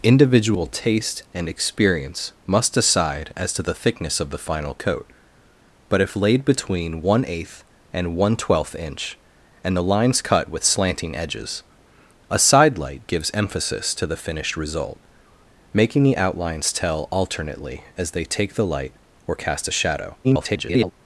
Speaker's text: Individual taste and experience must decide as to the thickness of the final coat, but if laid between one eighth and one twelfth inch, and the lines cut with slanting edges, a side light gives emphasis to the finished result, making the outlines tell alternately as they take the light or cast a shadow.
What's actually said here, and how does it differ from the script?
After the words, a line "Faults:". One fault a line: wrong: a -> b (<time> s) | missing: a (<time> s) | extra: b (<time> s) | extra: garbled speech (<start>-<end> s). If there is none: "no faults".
Individual taste and experience must decide as to the thickness of the final coat, but if laid between one eighth and one twelfth inch, and the lines cut with slanting edges, a side light gives emphasis to the finished result, making the outlines tell alternately as they take the light or cast a shadow. [garbled]
Faults:
extra: garbled speech (20.2-20.9 s)